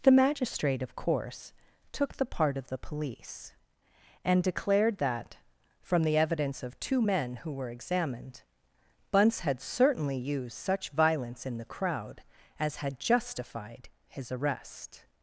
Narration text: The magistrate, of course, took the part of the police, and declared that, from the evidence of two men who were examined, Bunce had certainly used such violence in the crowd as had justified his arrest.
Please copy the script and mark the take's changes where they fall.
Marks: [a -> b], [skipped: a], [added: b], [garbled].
The magistrate, of course, took the part of the police, and declared that, from the evidence of two men who were examined, Bunce had certainly used such violence in the crowd as had justified his arrest.